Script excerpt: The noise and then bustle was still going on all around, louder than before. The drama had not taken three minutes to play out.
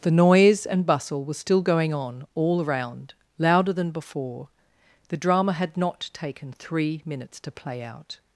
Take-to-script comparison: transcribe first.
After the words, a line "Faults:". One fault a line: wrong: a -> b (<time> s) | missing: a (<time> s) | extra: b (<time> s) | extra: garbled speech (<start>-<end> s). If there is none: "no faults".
The noise and bustle was still going on all around, louder than before. The drama had not taken three minutes to play out.
Faults:
missing: then (0.8 s)